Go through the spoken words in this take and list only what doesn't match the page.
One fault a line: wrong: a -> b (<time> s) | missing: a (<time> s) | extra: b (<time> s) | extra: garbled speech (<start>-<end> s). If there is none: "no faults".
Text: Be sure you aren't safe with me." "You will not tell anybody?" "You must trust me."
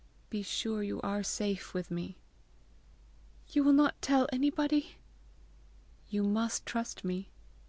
wrong: aren't -> are (1.0 s)